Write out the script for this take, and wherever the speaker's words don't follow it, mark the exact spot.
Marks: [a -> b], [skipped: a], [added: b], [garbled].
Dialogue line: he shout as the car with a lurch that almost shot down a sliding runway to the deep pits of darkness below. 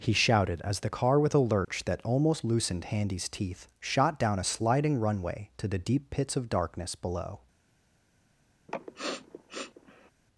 he [shout -> shouted] as the car with a lurch that almost [added: loosened Handy's teeth] shot down a sliding runway to the deep pits of darkness below.